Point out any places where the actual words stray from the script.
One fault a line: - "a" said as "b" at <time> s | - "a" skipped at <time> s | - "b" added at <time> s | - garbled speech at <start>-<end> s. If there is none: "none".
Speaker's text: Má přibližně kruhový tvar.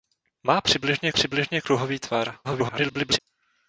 - "přibližně" added at 1.1 s
- garbled speech at 2.4-3.2 s